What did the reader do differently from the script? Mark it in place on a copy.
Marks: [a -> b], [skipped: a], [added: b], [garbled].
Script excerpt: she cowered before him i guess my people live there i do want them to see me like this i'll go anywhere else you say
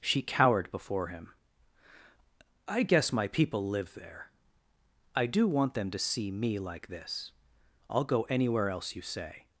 she cowered before him i guess my people live there i do want them to see me like this i'll go anywhere else you say